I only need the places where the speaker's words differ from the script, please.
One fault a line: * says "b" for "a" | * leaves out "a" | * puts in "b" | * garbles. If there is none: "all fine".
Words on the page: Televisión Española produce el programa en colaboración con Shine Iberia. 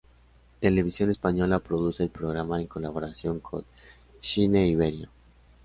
all fine